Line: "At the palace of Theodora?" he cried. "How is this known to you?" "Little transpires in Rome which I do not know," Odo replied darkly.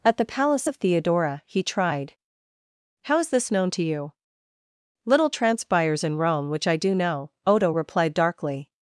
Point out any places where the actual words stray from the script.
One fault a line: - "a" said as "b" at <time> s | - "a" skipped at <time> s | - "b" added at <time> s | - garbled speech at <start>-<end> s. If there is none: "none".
- "cried" said as "tried" at 1.6 s
- "not" skipped at 7.0 s